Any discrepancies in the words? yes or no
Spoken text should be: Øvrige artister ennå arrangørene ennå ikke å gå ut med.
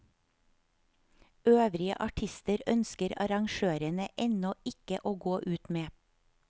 yes